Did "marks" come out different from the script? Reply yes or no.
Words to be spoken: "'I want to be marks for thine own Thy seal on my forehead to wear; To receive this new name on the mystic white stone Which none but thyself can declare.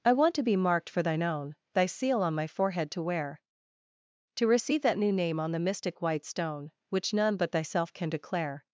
yes